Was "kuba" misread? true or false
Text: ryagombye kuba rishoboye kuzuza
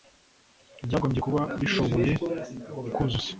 false